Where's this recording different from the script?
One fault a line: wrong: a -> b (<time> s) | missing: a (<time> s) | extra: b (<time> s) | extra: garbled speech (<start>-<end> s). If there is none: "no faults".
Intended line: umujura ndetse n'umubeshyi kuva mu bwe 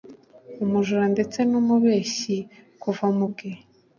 no faults